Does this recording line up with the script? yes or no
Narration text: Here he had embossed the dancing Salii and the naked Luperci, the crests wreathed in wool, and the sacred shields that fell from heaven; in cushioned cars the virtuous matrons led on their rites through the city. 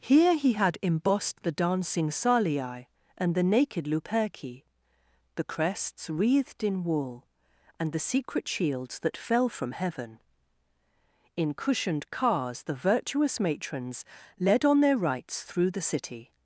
no